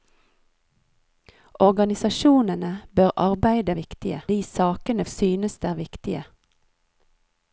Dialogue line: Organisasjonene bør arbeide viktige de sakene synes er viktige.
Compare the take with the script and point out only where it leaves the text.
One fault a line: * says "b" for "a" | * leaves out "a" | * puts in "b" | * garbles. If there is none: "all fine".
all fine